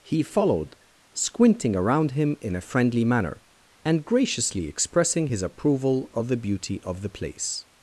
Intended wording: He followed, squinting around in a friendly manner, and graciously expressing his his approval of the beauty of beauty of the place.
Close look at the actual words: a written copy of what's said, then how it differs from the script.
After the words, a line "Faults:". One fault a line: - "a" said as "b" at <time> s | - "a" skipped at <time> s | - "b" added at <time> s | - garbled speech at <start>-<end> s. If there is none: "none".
He followed, squinting around him in a friendly manner, and graciously expressing his approval of the beauty of the place.
Faults:
- "him" added at 2.1 s
- "his" skipped at 5.4 s
- "beauty of" skipped at 7.0 s